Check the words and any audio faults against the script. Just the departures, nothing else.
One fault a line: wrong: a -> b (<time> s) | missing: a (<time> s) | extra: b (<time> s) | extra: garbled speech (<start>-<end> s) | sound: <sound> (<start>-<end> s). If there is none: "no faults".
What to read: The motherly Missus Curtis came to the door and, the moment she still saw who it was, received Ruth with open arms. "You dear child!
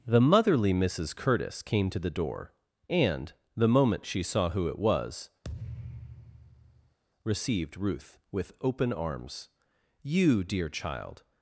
missing: still (4.2 s)
sound: thud (5.4-7.0 s)